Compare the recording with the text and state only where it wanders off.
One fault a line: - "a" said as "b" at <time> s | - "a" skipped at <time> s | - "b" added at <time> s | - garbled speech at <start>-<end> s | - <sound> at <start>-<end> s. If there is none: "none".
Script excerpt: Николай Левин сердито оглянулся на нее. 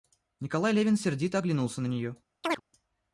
- chirp at 2.4-2.6 s